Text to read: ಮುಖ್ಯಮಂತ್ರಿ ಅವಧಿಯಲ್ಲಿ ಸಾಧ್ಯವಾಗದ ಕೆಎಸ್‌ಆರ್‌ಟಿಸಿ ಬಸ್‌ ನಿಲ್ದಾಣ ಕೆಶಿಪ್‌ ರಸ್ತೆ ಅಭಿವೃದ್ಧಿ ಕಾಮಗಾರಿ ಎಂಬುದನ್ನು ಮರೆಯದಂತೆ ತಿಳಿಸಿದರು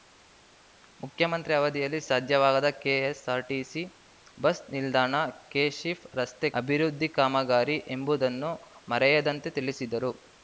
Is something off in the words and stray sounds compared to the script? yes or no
no